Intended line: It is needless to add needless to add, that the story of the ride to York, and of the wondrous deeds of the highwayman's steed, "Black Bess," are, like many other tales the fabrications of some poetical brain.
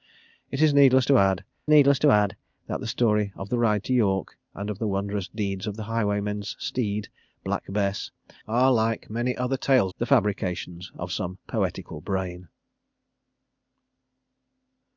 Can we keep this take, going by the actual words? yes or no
yes